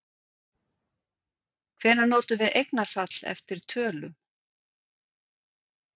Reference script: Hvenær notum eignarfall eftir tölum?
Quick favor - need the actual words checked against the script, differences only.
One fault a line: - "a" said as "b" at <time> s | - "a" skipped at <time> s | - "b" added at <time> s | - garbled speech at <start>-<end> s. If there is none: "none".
- "við" added at 2.4 s